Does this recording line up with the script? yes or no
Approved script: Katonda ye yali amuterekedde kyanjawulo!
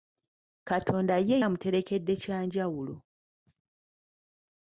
no